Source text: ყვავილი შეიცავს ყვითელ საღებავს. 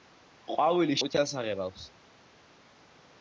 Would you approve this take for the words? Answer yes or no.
no